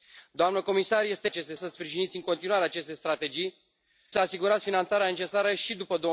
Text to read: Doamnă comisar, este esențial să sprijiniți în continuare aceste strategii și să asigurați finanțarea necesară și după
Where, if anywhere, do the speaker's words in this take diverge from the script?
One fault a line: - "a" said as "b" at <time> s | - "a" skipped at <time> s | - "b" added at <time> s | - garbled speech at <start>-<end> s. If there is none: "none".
- "esențial" said as "aceste" at 1.2 s
- "și" skipped at 3.6 s